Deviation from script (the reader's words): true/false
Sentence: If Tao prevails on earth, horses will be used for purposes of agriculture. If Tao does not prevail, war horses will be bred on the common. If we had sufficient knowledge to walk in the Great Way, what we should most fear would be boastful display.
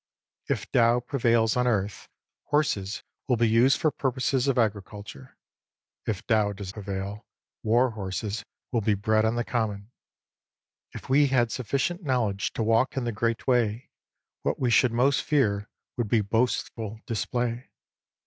true